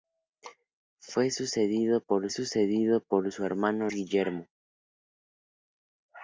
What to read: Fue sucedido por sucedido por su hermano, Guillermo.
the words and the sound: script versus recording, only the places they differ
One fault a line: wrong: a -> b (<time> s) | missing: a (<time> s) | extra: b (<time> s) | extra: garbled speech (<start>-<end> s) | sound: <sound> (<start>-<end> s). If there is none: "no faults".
no faults